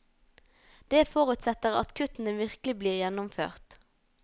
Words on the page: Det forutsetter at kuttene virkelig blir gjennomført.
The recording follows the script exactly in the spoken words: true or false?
true